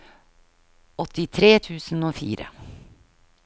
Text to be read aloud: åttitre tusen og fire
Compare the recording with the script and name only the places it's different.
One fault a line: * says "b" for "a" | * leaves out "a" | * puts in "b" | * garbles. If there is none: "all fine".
all fine